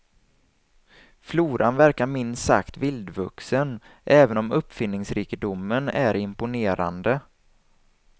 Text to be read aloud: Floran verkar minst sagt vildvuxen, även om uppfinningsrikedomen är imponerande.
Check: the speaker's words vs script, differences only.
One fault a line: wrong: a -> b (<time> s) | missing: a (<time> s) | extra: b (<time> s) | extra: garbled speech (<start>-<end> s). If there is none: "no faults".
no faults